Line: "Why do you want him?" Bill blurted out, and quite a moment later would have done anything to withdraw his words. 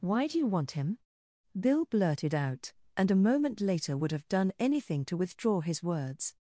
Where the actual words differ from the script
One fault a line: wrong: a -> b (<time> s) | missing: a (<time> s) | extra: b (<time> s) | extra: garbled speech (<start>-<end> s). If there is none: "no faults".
missing: quite (3.1 s)